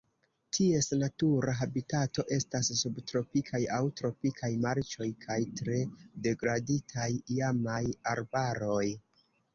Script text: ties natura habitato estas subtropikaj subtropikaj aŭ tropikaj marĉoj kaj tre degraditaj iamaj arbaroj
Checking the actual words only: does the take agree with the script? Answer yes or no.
no